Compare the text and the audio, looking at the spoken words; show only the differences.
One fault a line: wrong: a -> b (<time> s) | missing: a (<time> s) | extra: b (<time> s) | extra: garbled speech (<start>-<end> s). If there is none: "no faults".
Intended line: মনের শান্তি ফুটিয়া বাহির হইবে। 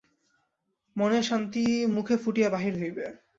extra: মুখে (1.9 s)